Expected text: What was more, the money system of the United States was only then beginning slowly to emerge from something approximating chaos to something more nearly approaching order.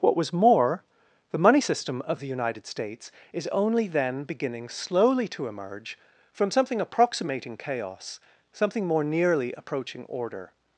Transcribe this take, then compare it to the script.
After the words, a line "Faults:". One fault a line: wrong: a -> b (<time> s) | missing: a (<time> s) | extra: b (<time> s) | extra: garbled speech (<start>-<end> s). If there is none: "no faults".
What was more, the money system of the United States is only then beginning slowly to emerge from something approximating chaos something more nearly approaching order.
Faults:
wrong: was -> is (3.3 s)
missing: to (8.2 s)